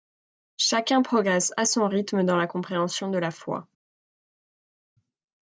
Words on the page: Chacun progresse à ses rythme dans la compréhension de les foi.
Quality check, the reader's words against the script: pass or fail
fail